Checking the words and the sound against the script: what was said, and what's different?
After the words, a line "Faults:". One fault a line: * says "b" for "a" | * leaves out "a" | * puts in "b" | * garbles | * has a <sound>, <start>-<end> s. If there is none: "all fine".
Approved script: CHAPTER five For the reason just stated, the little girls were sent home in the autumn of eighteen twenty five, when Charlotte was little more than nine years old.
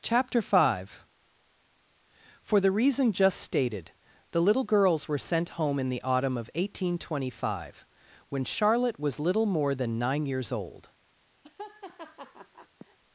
CHAPTER five For the reason just stated, the little girls were sent home in the autumn of eighteen twenty five, when Charlotte was little more than nine years old.
Faults:
* has a laugh, 11.4-13.0 s